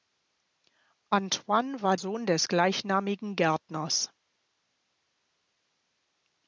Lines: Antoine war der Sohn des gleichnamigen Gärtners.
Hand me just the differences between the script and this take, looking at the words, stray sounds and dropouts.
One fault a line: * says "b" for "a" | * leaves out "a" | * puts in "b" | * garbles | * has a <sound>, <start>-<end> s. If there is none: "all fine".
* leaves out "der"